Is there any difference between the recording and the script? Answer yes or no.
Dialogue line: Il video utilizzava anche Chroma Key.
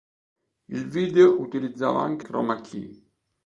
no